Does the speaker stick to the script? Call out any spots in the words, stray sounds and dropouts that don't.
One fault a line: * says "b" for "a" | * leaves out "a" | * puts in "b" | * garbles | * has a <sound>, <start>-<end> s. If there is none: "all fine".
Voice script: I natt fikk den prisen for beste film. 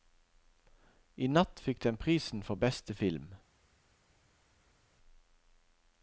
all fine